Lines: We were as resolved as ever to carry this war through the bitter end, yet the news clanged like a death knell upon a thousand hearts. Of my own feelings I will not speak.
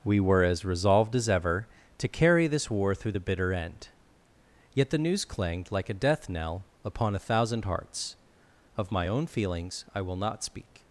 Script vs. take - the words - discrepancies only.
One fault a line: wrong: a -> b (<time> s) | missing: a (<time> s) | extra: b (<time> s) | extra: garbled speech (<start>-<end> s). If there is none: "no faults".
no faults